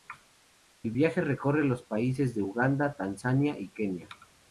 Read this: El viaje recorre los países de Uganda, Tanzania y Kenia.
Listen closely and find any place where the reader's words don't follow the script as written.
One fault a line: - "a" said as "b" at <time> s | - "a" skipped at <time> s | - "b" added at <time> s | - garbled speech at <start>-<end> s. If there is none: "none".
none